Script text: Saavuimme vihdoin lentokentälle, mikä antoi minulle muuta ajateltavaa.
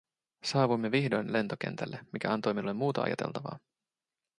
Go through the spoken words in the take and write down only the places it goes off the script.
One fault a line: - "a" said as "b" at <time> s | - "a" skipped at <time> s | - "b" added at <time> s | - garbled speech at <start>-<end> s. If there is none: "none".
none